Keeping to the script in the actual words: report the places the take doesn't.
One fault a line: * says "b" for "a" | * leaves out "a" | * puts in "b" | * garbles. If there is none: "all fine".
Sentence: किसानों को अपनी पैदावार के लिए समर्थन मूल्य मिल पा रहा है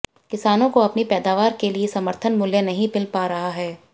* puts in "नहीं"